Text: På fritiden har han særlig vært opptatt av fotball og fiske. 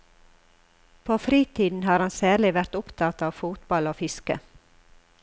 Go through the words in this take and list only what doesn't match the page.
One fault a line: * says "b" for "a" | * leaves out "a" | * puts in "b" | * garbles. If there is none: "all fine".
all fine